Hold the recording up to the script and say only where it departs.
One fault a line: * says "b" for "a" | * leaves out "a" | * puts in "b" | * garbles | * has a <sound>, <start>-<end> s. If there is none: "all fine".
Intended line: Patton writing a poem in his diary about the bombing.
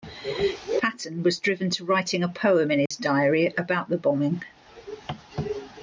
* puts in "was driven to"
* has a dropout, 2.9-2.9 s